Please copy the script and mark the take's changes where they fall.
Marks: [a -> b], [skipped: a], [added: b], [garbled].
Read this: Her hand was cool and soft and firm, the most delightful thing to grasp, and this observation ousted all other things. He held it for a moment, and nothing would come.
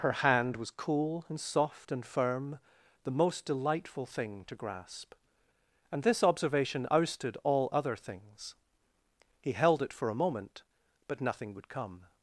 Her hand was cool and soft and firm, the most delightful thing to grasp, and this observation ousted all other things. He held it for a moment, [and -> but] nothing would come.